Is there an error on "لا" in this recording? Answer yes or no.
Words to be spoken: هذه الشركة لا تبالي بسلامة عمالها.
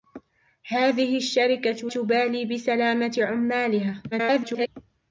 yes